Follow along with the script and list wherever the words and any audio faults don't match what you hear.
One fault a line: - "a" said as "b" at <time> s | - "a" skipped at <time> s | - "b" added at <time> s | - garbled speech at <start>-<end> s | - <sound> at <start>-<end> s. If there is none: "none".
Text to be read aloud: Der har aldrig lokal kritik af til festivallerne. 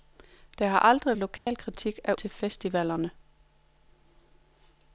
- dropout at 1.4-1.5 s